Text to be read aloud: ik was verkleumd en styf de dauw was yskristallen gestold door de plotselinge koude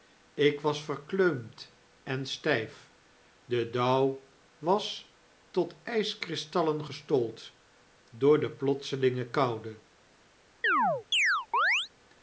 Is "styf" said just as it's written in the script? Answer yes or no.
yes